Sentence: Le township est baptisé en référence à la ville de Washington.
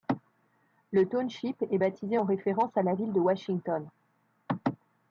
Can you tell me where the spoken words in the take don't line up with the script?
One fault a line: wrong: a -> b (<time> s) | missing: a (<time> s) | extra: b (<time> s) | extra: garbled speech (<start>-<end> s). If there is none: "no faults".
no faults